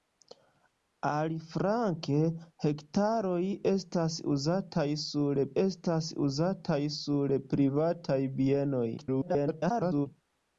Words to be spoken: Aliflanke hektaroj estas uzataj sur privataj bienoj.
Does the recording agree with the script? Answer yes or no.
no